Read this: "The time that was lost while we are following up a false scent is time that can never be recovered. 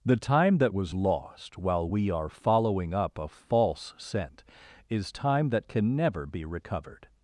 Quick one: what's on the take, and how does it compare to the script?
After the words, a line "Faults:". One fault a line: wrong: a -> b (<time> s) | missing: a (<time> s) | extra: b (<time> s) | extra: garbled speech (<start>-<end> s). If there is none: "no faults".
"The time that was lost while we are following up a false scent is time that can never be recovered.
Faults:
no faults